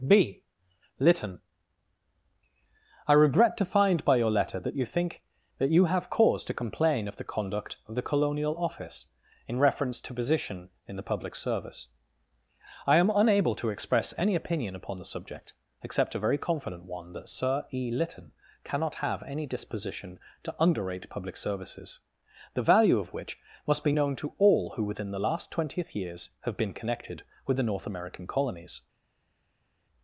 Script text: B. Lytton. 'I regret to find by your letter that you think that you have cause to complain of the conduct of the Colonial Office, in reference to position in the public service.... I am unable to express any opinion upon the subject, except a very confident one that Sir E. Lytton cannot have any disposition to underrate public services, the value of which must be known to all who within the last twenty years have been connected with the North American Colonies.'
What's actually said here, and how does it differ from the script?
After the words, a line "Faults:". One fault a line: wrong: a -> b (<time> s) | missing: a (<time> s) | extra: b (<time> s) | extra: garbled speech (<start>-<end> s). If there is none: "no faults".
B. Lytton. 'I regret to find by your letter that you think that you have cause to complain of the conduct of the Colonial Office, in reference to position in the public service.... I am unable to express any opinion upon the subject, except a very confident one that Sir E. Lytton cannot have any disposition to underrate public services, the value of which must be known to all who within the last twentieth years have been connected with the North American Colonies.'
Faults:
wrong: twenty -> twentieth (25.5 s)